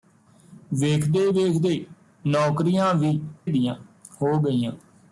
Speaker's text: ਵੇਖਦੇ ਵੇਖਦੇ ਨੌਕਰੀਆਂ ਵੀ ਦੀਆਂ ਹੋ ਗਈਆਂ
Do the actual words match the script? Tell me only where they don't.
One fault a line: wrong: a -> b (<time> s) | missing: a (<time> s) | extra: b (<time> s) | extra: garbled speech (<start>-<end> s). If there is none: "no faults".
no faults